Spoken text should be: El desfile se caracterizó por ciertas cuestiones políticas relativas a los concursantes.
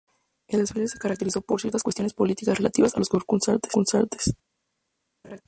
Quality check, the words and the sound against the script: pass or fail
fail